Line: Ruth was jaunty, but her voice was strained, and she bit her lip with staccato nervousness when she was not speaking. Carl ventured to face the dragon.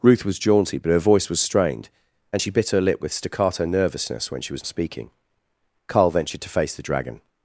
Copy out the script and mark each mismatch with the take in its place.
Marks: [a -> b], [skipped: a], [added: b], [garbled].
Ruth was jaunty, but her voice was strained, and she bit her lip with staccato nervousness when she was [skipped: not] speaking. Carl ventured to face the dragon.